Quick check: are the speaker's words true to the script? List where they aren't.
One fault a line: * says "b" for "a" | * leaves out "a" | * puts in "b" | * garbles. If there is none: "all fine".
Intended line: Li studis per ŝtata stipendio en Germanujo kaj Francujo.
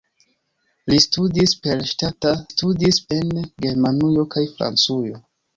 * says "studis" for "stipendio"